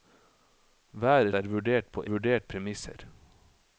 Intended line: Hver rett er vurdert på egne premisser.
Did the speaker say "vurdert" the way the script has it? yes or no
yes